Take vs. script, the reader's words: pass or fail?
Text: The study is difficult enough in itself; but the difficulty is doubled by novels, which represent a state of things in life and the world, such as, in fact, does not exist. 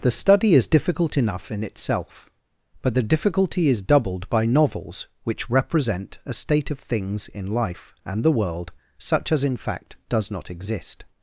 pass